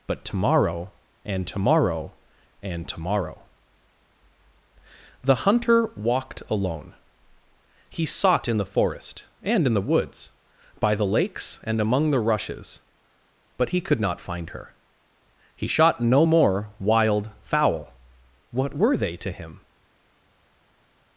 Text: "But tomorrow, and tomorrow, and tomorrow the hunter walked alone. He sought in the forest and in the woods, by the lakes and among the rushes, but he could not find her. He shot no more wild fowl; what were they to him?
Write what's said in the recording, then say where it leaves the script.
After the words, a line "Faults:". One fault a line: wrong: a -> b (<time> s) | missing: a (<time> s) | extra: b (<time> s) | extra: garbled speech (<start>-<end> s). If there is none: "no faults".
"But tomorrow, and tomorrow, and tomorrow the hunter walked alone. He sought in the forest and in the woods, by the lakes and among the rushes, but he could not find her. He shot no more wild fowl; what were they to him?
Faults:
no faults